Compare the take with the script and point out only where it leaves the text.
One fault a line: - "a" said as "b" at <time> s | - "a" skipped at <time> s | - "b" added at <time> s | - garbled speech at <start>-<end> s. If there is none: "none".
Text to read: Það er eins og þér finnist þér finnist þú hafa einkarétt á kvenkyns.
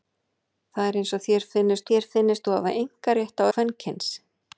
none